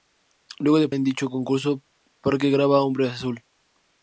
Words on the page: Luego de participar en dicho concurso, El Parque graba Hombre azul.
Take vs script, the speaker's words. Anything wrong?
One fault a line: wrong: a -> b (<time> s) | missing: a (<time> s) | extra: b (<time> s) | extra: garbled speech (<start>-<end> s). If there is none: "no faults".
missing: participar (0.9 s)
missing: El (1.8 s)